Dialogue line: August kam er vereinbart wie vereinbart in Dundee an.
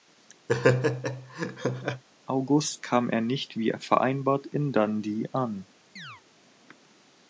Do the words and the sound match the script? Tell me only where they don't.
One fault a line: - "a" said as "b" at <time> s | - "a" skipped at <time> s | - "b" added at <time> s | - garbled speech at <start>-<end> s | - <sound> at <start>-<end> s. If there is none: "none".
- laugh at 0.5-2.0 s
- "vereinbart" said as "nicht" at 3.2 s
- chirp at 6.0-6.2 s